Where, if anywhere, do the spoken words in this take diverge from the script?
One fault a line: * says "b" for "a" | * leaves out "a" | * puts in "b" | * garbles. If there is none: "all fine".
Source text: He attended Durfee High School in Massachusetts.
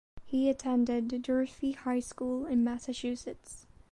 all fine